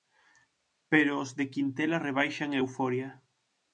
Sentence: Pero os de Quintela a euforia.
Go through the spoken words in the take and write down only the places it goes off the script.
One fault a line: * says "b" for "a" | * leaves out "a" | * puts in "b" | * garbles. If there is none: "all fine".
* puts in "rebaixan"